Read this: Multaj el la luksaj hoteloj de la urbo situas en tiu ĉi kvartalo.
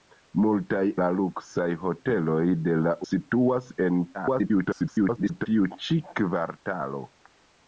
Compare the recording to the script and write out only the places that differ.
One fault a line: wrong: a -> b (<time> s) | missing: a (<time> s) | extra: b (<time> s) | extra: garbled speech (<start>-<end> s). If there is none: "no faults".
missing: el (0.8 s)
missing: urbo (2.9 s)
extra: garbled speech (4.1-5.5 s)